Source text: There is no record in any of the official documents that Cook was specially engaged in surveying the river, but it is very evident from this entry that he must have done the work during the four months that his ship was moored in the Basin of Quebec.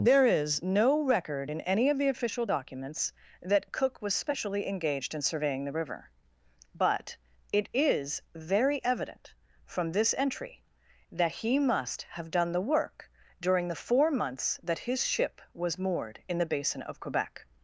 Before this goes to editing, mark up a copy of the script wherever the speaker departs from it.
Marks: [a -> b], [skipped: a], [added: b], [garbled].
There is no record in any of the official documents that Cook was specially engaged in surveying the river, but it is very evident from this entry that he must have done the work during the four months that his ship was moored in the Basin of Quebec.